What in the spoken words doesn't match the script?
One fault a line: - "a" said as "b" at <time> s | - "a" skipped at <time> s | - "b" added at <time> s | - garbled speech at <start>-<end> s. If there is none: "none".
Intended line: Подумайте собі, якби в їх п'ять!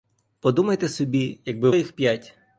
none